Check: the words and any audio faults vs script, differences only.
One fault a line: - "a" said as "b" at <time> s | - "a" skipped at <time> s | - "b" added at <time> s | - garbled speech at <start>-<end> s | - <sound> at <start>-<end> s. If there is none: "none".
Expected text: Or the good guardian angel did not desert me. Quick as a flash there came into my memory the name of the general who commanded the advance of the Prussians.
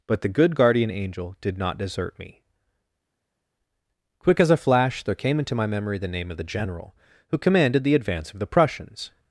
- "Or" said as "But" at 0.1 s